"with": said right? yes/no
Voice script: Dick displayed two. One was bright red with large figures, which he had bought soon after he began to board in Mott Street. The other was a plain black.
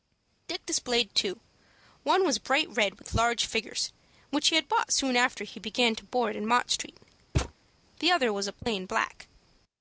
yes